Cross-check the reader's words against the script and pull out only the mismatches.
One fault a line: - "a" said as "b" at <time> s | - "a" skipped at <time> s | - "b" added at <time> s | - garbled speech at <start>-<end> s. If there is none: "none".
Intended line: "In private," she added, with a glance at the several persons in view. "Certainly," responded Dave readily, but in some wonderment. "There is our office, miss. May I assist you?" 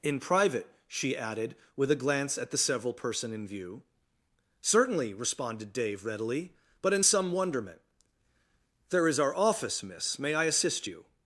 - "persons" said as "person" at 2.9 s